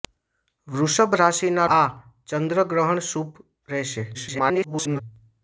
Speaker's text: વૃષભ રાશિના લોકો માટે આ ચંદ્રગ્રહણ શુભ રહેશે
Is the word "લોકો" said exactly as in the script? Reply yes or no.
no